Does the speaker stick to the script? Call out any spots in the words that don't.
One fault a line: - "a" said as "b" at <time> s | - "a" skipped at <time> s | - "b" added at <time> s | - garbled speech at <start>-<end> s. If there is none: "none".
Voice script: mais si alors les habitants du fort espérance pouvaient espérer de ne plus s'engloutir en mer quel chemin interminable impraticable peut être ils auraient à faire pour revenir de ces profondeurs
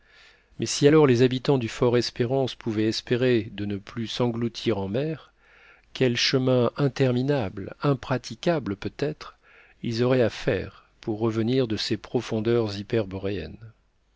none